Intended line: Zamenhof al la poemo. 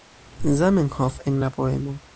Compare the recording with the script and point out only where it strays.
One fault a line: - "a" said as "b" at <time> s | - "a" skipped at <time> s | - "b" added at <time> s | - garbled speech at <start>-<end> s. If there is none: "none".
- "al" said as "en" at 1.2 s